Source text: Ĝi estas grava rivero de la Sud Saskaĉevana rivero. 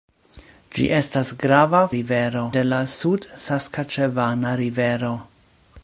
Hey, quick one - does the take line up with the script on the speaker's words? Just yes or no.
yes